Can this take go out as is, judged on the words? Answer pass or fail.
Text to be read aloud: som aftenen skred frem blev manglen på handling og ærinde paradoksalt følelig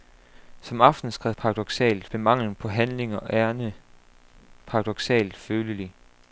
fail